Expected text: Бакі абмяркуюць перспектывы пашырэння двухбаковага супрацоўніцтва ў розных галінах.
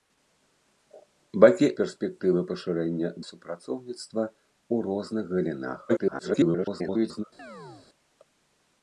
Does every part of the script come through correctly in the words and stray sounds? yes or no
no